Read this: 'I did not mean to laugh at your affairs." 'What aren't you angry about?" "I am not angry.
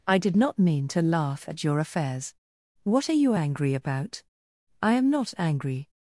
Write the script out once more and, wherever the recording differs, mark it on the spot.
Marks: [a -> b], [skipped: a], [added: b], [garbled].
'I did not mean to laugh at your affairs." 'What [aren't -> are] you angry about?" "I am not angry.